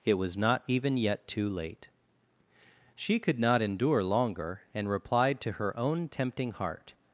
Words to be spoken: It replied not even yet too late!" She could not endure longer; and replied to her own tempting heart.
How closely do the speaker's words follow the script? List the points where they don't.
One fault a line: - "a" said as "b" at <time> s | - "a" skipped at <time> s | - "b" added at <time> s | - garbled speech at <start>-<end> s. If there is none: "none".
- "replied" said as "was" at 0.1 s